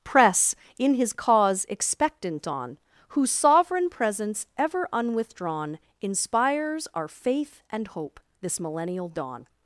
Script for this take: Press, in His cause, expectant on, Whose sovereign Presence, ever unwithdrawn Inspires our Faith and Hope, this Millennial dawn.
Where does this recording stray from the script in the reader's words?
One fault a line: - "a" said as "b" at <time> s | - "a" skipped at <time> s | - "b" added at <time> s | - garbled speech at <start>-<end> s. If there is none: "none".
none